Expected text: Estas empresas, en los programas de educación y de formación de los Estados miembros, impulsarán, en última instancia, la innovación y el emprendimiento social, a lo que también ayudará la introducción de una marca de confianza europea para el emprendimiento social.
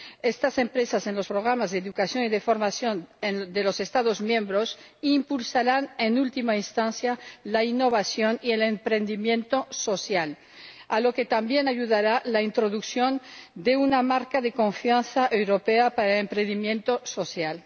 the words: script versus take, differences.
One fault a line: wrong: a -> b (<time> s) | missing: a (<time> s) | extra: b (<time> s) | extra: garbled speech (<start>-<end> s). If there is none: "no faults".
no faults